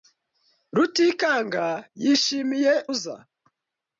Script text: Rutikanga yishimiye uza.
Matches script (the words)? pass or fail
pass